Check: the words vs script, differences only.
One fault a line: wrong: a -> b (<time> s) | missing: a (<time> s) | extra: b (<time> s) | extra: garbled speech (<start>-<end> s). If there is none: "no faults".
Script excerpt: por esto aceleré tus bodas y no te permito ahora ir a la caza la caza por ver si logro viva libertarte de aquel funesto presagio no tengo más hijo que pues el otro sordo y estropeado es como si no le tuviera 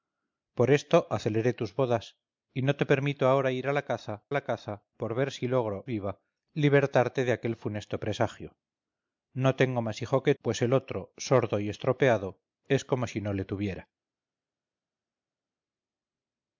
no faults